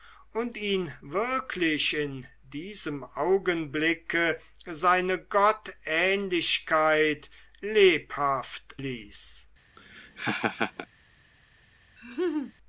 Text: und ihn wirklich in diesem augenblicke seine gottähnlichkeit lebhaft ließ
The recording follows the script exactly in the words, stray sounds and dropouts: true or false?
false